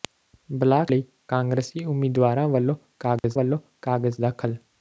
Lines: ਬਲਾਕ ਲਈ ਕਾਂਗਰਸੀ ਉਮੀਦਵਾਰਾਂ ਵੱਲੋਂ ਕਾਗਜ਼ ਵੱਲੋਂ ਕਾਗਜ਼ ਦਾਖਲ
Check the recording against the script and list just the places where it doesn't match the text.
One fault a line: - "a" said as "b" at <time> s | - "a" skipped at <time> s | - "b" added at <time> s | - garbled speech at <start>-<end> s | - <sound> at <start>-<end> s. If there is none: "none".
- dropout at 3.2-3.2 s